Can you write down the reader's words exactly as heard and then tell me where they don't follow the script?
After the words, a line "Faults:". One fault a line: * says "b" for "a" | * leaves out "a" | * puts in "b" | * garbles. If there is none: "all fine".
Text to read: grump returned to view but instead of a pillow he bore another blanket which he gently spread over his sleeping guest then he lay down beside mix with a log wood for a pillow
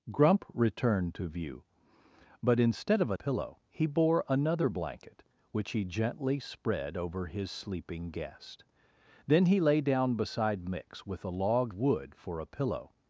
grump returned to view but instead of a pillow he bore another blanket which he gently spread over his sleeping guest then he lay down beside mix with a log wood for a pillow
Faults:
all fine